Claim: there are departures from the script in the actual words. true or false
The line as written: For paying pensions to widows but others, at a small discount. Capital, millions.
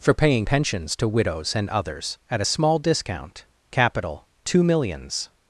true